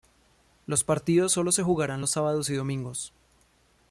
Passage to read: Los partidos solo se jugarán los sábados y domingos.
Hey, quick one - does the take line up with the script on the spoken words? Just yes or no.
yes